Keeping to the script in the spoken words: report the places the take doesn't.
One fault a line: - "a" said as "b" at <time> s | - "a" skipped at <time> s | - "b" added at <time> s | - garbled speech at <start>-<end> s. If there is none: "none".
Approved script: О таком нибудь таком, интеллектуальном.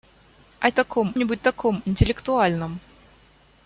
none